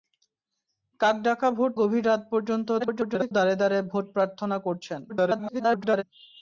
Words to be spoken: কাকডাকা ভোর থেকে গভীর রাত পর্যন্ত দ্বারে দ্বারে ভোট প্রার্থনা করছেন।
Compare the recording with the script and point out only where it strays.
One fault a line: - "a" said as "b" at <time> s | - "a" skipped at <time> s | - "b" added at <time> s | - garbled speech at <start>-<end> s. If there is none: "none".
- "থেকে" skipped at 1.7 s
- garbled speech at 2.8-3.3 s
- garbled speech at 5.1-6.0 s